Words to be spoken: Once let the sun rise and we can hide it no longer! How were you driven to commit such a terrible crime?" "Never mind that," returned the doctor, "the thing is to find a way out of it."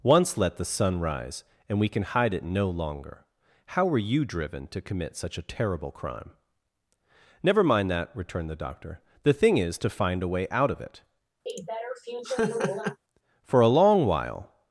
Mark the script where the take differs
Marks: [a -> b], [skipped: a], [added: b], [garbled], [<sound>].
Once let the sun rise and we can hide it no longer! How were you driven to commit such a terrible crime?" "Never mind that," returned the doctor, "the thing is to find a way out of it." [laugh] [added: For a long while]